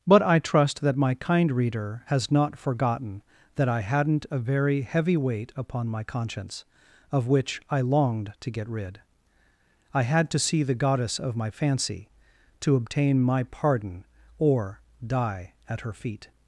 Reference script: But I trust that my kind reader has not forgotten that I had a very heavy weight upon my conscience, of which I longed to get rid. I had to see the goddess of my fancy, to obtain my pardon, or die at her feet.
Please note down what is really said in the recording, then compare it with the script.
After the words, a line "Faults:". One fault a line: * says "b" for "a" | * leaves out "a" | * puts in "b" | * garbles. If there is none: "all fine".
But I trust that my kind reader has not forgotten that I hadn't a very heavy weight upon my conscience, of which I longed to get rid. I had to see the goddess of my fancy, to obtain my pardon, or die at her feet.
Faults:
* says "hadn't" for "had"